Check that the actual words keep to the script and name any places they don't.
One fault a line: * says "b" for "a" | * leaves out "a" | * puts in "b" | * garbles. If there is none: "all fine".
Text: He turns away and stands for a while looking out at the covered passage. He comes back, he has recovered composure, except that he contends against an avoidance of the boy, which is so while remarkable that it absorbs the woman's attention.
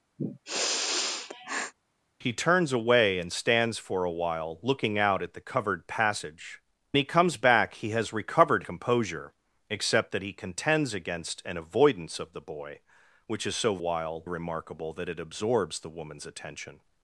all fine